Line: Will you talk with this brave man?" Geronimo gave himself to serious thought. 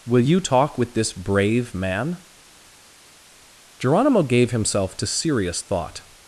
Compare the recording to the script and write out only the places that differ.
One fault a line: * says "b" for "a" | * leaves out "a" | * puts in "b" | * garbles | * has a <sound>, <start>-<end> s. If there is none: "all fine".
all fine